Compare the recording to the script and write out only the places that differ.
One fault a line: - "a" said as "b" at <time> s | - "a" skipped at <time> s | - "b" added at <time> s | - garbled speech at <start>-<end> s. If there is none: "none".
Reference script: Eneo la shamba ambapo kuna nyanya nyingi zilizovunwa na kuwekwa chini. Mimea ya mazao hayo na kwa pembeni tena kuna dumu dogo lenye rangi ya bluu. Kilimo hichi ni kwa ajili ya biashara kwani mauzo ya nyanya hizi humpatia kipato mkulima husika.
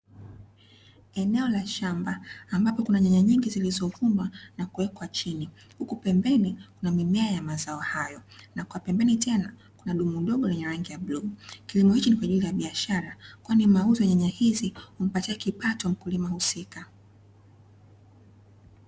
- "Huku pembeni kuna" added at 5.8 s